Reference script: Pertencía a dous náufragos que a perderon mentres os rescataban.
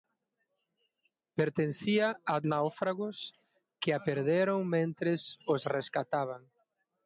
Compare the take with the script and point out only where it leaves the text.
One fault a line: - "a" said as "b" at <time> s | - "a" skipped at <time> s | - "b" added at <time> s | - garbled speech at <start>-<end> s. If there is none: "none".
- "dous" skipped at 2.4 s